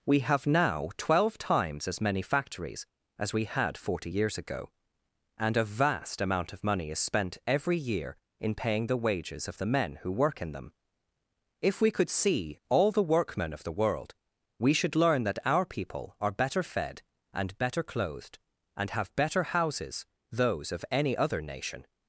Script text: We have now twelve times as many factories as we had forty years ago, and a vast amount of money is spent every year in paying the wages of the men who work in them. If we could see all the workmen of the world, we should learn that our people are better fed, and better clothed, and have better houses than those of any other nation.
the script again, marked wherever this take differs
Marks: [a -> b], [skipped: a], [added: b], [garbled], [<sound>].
We have now twelve times as many factories as we had forty years ago, and a vast amount of money is spent every year in paying the wages of the men who work in them. If we could see all the workmen of the world, we should learn that our people are better fed, and better clothed, and have better houses [skipped: than] those of any other nation.